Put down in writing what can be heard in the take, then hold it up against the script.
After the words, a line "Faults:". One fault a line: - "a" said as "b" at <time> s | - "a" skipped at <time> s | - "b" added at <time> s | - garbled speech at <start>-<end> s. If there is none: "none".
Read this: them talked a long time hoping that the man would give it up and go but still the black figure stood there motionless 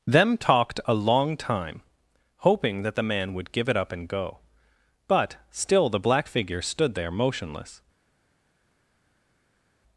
them talked a long time hoping that the man would give it up and go but still the black figure stood there motionless
Faults:
none